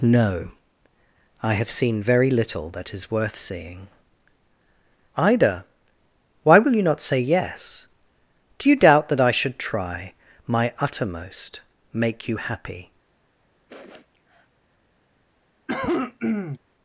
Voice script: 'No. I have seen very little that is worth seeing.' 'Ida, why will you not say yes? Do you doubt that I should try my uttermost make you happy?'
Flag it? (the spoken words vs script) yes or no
no